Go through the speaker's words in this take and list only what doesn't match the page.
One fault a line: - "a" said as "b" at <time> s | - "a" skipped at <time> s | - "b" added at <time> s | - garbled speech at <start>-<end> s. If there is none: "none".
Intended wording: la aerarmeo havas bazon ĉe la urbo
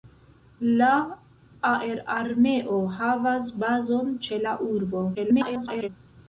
- garbled speech at 5.1-5.9 s